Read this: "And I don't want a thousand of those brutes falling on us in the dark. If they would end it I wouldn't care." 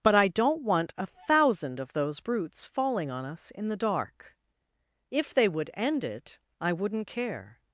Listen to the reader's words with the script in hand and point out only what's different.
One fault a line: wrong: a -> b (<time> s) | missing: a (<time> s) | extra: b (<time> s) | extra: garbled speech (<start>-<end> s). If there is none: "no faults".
wrong: And -> But (0.0 s)